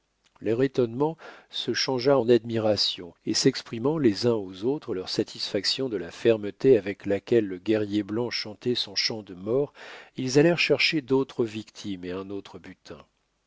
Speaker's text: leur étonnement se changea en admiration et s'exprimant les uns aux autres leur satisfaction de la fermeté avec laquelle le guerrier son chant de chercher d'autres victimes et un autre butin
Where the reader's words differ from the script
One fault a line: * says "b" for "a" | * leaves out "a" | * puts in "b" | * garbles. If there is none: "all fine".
* puts in "blanc chantait"
* puts in "mort ils allèrent"